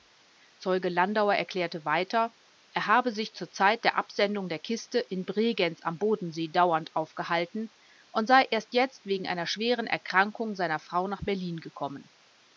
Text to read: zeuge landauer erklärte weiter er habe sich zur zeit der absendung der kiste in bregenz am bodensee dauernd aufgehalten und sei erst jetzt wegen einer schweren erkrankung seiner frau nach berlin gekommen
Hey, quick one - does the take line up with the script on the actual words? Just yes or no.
yes